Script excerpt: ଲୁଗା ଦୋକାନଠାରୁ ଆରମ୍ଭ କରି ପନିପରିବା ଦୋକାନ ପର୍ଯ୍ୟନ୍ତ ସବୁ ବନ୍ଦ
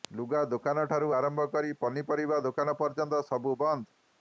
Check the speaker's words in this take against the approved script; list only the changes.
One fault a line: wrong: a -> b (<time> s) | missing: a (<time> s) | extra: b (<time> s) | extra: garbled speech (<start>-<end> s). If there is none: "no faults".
no faults